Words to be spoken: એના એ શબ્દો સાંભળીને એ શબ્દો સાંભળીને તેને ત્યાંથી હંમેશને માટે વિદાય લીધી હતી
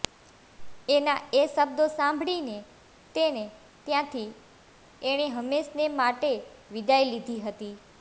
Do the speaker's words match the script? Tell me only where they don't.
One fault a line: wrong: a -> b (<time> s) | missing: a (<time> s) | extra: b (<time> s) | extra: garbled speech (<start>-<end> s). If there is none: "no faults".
missing: એ શબ્દો સાંભળીને (2.6 s)
extra: એણે (5.0 s)